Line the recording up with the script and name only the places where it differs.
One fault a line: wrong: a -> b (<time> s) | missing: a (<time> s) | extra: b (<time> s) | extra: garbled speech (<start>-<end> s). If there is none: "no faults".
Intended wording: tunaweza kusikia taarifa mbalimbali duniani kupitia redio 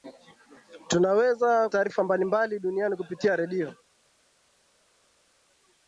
missing: kusikia (1.7 s)